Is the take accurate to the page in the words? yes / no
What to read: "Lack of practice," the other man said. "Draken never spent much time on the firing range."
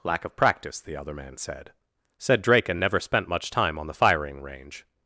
no